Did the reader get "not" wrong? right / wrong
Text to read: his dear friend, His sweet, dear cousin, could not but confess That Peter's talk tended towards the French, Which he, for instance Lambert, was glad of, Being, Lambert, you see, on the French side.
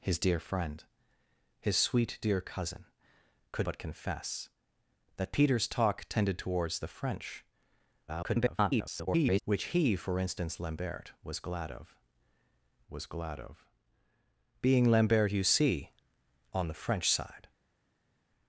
wrong